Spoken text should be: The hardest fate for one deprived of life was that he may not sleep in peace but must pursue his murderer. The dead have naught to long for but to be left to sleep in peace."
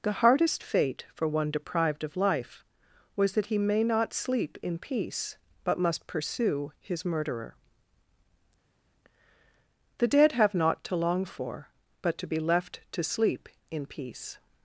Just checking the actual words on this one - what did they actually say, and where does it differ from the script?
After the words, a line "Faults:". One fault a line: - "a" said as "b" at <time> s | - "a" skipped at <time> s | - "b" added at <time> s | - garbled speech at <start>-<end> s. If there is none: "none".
The hardest fate for one deprived of life was that he may not sleep in peace but must pursue his murderer. The dead have naught to long for but to be left to sleep in peace."
Faults:
none